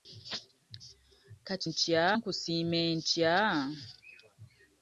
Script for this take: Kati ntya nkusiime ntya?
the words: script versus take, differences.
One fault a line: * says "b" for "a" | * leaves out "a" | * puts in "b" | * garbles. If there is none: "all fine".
all fine